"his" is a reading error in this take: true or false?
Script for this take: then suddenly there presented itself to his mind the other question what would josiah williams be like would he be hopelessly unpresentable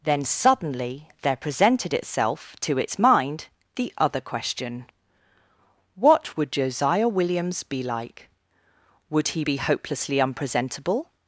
true